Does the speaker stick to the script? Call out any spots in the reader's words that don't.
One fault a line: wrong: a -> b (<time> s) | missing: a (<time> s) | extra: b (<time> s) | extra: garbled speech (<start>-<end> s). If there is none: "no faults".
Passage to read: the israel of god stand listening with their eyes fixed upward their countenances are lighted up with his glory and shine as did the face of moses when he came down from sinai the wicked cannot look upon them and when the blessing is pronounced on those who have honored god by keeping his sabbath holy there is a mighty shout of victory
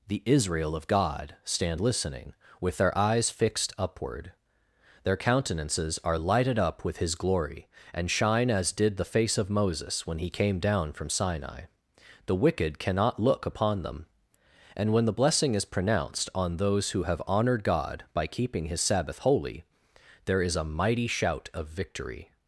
no faults